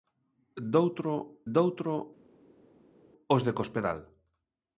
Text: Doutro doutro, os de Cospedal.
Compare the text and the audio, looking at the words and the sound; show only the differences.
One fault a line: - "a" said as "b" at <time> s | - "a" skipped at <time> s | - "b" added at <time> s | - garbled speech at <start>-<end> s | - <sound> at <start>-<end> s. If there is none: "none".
none